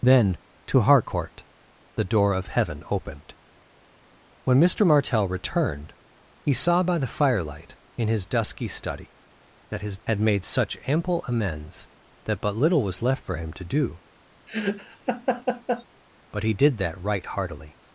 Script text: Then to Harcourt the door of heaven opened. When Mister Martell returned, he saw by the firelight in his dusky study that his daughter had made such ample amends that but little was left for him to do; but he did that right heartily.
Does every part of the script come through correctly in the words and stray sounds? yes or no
no